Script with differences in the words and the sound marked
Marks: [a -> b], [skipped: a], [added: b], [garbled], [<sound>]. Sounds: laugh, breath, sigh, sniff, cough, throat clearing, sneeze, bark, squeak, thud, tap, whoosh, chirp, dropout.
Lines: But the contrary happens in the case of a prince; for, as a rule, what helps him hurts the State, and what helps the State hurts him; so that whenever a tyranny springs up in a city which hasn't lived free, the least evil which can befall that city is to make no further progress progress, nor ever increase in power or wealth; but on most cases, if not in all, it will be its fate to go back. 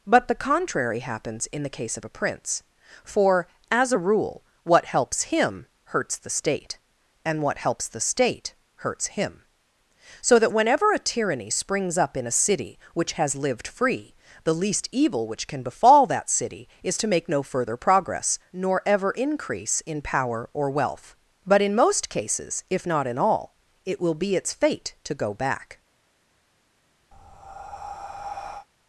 But the contrary happens in the case of a prince; for, as a rule, what helps him hurts the State, and what helps the State hurts him; so that whenever a tyranny springs up in a city which [hasn't -> has] lived free, the least evil which can befall that city is to make no further progress [skipped: progress,] nor ever increase in power or wealth; but [on -> in] most cases, if not in all, it will be its fate to go back. [breath]